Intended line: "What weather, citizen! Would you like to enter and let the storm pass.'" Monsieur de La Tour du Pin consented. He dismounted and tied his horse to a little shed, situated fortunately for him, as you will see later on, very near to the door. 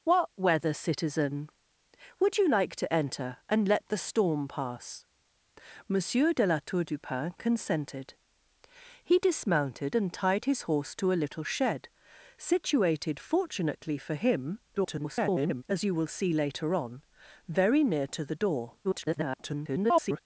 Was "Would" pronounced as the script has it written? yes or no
yes